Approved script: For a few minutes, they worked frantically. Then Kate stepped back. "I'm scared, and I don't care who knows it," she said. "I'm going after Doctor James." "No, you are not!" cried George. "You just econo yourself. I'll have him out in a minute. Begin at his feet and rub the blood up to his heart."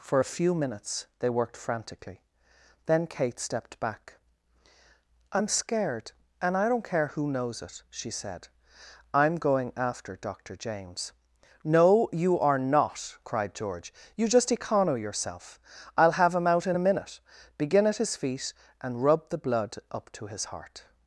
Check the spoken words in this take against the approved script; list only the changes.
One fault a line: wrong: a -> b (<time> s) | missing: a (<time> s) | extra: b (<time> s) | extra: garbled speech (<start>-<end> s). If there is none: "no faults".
no faults